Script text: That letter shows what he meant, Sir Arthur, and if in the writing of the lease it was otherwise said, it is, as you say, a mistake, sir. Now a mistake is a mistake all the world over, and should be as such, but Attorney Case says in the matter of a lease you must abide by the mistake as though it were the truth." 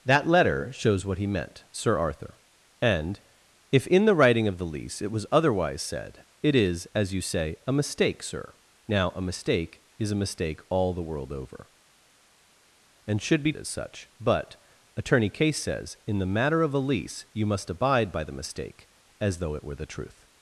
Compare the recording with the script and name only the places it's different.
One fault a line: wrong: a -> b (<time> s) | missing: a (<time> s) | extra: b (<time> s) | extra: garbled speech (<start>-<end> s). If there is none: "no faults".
no faults